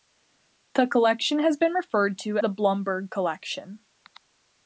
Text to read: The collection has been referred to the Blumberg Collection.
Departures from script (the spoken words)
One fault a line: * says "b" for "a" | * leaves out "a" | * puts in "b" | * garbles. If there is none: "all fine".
all fine